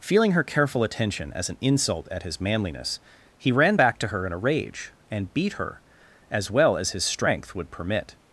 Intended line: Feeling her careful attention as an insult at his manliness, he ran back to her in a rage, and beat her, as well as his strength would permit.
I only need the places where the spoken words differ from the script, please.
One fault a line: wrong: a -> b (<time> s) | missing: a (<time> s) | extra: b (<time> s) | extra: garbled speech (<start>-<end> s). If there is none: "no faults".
no faults